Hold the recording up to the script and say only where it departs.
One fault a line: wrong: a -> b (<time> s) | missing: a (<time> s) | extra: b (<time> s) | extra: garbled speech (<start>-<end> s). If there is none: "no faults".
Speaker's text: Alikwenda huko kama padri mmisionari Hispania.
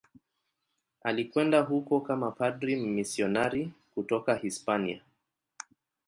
extra: kutoka (3.9 s)